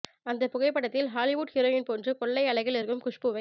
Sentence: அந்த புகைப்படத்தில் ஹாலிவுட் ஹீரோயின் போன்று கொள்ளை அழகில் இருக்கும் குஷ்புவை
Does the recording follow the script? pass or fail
pass